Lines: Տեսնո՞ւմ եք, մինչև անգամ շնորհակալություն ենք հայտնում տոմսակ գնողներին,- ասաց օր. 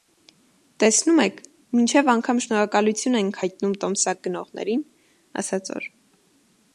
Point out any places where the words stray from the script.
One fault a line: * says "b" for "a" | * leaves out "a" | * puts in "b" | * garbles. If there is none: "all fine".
all fine